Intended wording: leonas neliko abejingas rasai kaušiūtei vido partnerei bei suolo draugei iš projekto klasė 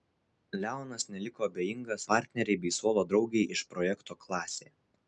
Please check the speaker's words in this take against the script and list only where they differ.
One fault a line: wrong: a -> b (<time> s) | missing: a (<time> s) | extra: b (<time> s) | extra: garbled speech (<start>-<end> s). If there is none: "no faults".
missing: rasai kaušiūtei vido (2.0 s)